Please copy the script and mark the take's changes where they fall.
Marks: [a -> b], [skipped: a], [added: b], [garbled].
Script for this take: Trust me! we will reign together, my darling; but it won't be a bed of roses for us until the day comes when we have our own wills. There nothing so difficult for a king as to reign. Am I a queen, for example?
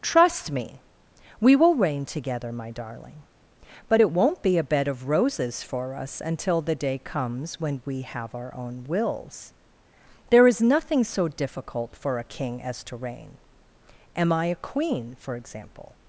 Trust me! we will reign together, my darling; but it won't be a bed of roses for us until the day comes when we have our own wills. There [added: is] nothing so difficult for a king as to reign. Am I a queen, for example?